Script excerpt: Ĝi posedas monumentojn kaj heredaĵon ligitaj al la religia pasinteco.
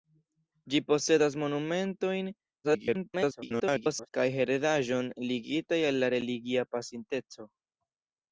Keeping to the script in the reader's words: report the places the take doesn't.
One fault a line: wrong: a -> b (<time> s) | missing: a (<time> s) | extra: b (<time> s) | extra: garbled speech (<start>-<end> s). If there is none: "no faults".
extra: garbled speech (2.6-4.1 s)